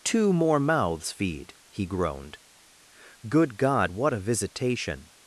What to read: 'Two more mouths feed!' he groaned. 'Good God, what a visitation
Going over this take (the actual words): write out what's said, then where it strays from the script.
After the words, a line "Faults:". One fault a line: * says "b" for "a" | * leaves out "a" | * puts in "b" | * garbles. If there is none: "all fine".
'Two more mouths feed!' he groaned. 'Good God, what a visitation
Faults:
all fine